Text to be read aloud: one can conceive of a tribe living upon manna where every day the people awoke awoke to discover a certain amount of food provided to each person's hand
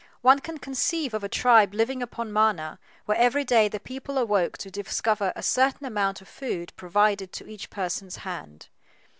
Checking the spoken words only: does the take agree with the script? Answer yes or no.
no